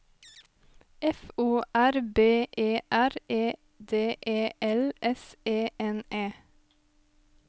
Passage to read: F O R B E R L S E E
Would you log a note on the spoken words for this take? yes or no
yes